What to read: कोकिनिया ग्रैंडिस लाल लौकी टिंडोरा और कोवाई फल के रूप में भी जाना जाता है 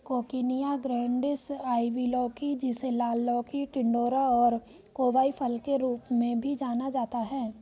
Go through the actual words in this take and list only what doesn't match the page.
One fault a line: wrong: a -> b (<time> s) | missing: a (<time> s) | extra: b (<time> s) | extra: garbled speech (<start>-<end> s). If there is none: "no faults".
extra: आइवी लौकी जिसे (1.5 s)